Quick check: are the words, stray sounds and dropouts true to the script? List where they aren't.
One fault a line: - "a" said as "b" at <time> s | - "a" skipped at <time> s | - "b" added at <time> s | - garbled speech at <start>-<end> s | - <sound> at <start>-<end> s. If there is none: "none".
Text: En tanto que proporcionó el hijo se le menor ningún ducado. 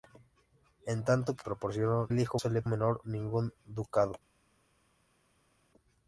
none